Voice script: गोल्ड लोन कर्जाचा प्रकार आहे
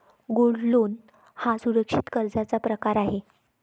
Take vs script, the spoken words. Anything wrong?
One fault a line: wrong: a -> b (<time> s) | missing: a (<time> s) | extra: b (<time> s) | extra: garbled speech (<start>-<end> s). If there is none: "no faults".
extra: हा सुरक्षित (1.4 s)